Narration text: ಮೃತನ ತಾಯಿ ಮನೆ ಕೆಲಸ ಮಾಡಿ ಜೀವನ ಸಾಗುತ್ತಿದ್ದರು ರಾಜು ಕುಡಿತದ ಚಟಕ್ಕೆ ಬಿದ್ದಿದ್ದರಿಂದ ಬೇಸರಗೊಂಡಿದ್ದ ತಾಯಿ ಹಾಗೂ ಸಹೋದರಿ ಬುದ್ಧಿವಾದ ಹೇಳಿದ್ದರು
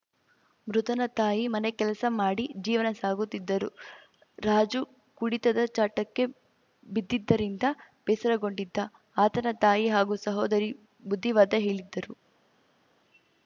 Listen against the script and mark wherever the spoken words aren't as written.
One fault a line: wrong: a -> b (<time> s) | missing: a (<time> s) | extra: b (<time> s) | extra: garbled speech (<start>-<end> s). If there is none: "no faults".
extra: ಆತನ (9.2 s)